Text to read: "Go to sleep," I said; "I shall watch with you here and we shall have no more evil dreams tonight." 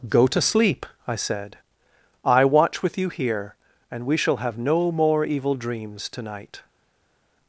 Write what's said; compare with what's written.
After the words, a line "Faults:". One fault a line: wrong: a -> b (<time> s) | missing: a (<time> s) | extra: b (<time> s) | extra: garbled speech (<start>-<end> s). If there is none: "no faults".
"Go to sleep," I said; "I watch with you here and we shall have no more evil dreams tonight."
Faults:
missing: shall (2.5 s)